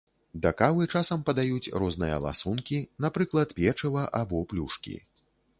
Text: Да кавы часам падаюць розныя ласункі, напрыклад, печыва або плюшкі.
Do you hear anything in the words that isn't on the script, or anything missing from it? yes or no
no